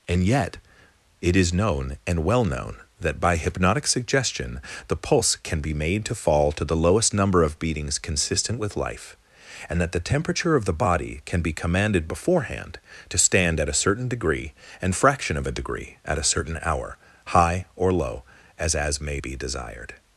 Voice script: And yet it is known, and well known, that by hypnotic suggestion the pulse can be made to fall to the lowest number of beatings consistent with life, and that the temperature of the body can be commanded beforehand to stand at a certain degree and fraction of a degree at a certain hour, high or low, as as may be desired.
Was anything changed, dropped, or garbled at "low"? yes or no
no